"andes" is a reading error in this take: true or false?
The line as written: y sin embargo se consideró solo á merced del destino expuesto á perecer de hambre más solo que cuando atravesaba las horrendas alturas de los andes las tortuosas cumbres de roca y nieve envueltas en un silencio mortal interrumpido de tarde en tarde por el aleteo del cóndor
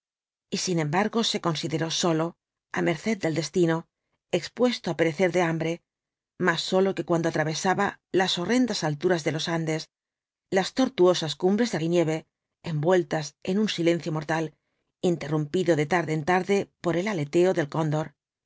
false